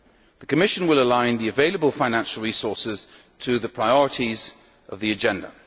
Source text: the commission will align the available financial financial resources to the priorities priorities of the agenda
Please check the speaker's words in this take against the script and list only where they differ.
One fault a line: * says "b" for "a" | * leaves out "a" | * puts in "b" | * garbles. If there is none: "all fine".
* leaves out "financial"
* leaves out "priorities"